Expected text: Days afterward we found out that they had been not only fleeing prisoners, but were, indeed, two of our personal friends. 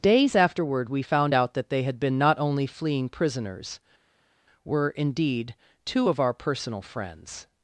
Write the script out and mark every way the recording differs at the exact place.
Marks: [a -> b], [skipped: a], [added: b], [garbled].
Days afterward we found out that they had been not only fleeing prisoners, [skipped: but] were, indeed, two of our personal friends.